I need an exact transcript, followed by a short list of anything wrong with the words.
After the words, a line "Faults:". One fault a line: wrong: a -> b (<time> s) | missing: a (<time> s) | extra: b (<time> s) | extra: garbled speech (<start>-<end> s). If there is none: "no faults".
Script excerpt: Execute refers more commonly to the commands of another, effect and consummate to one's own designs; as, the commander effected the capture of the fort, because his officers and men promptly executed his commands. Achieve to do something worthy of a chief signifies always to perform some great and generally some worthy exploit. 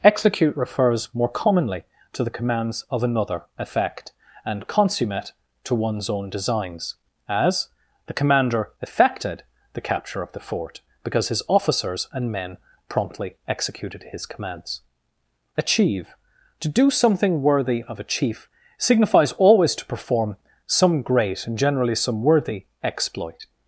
Execute refers more commonly to the commands of another, effect and consummate to one's own designs; as, the commander effected the capture of the fort, because his officers and men promptly executed his commands. Achieve to do something worthy of a chief signifies always to perform some great and generally some worthy exploit.
Faults:
no faults